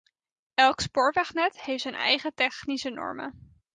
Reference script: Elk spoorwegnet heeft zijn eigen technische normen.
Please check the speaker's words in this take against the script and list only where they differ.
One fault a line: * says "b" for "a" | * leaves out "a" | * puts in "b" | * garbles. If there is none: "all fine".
all fine